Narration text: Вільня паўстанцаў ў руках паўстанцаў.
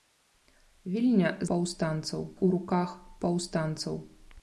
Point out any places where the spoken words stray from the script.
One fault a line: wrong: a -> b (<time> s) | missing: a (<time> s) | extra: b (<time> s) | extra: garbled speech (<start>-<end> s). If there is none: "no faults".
no faults